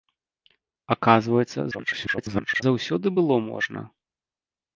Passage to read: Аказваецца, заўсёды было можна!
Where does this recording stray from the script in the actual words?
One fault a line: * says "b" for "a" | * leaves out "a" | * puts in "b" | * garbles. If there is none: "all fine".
* garbles